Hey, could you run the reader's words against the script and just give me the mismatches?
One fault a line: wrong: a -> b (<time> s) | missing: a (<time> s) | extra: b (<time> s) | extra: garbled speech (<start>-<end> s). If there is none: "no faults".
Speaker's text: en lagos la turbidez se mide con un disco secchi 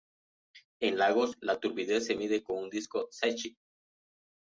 no faults